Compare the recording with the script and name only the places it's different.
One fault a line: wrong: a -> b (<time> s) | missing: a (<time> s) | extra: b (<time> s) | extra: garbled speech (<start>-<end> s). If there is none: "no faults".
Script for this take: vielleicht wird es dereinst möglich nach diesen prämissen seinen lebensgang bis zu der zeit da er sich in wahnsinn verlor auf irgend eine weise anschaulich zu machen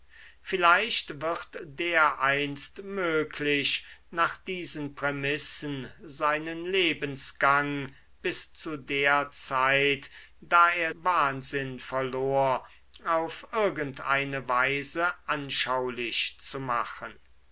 missing: es (1.6 s)
missing: sich in (10.9 s)